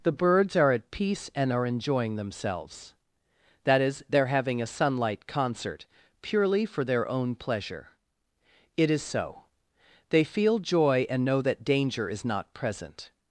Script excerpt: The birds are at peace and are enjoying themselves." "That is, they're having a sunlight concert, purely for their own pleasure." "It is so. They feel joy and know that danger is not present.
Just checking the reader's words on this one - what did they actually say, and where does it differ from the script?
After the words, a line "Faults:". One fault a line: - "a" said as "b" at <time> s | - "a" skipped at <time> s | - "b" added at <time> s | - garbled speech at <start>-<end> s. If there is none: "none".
The birds are at peace and are enjoying themselves." "That is, they're having a sunlight concert, purely for their own pleasure." "It is so. They feel joy and know that danger is not present.
Faults:
none